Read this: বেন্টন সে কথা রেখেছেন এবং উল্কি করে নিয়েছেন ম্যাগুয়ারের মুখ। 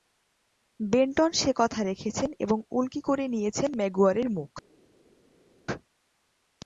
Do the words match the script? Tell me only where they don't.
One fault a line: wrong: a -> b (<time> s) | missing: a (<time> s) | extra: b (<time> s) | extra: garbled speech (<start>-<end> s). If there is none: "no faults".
no faults